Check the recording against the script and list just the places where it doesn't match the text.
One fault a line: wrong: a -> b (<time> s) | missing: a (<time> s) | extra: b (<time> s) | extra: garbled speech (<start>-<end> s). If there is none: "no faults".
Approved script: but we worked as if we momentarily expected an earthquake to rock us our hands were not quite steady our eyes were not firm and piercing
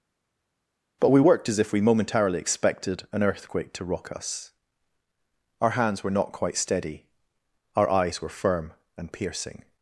missing: not (8.3 s)